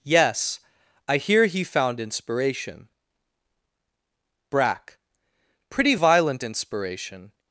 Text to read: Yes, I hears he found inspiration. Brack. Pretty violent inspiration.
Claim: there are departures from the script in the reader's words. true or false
true